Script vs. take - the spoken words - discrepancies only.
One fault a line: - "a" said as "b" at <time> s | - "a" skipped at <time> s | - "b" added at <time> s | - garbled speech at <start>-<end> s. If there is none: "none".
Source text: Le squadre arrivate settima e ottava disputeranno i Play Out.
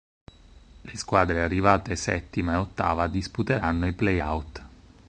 none